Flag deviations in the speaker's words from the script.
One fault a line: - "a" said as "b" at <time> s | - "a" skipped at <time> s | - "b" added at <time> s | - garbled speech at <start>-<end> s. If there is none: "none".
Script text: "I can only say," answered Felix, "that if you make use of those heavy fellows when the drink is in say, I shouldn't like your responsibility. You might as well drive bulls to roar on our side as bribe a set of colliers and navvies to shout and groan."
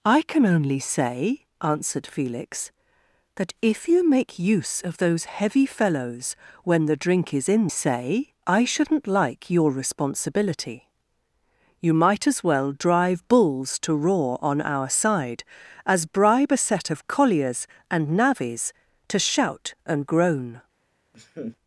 none